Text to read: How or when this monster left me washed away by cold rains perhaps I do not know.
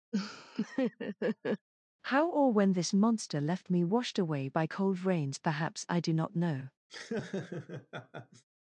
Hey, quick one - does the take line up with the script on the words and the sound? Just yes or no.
no